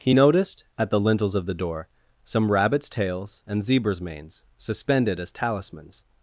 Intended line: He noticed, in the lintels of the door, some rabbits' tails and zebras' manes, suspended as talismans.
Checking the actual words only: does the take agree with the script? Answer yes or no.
no